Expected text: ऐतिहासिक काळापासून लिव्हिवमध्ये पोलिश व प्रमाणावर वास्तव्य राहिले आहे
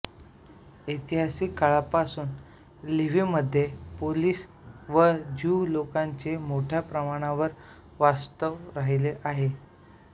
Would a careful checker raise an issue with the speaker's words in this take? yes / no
yes